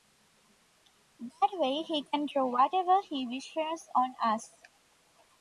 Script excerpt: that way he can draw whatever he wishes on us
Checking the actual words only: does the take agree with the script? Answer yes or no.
yes